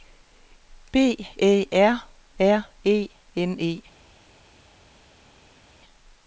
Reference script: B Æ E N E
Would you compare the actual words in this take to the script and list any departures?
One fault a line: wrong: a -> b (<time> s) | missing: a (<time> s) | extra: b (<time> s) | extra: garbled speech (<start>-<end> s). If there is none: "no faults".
extra: R R (1.7 s)